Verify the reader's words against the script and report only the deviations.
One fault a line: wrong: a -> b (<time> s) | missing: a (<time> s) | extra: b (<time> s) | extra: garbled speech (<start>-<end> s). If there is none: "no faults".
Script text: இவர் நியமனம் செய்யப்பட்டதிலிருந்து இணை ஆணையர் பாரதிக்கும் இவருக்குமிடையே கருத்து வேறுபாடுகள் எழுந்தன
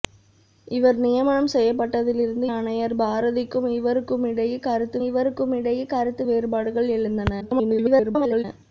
missing: இணை (2.5 s)
extra: இவருக்குமிடையே கருத்து (5.0 s)
extra: garbled speech (7.4-8.4 s)